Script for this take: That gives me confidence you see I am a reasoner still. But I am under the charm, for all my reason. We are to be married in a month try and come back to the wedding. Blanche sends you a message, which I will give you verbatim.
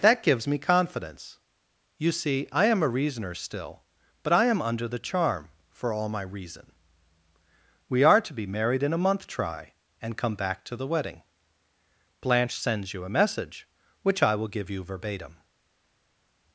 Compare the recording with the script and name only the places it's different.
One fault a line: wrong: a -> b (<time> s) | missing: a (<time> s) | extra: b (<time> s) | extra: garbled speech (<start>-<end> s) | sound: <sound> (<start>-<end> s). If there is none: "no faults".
no faults